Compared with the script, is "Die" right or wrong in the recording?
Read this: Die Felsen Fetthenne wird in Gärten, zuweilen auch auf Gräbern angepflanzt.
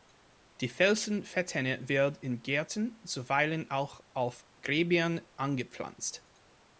right